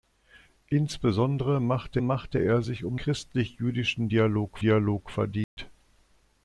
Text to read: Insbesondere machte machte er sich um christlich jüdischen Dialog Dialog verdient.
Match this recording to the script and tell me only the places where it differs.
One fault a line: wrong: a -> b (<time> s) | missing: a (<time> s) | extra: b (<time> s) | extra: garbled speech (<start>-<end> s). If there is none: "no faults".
no faults